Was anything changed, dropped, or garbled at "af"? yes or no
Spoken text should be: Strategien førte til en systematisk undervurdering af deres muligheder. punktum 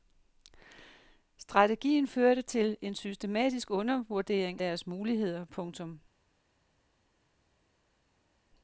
yes